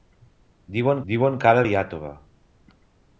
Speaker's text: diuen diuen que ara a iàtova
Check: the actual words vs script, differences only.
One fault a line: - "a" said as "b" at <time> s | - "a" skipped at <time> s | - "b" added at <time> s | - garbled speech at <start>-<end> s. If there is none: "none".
none